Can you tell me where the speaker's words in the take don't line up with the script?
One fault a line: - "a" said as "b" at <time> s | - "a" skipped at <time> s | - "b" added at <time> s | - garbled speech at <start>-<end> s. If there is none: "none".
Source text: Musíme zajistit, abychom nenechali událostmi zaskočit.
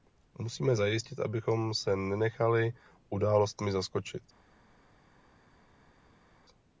- "se" added at 1.7 s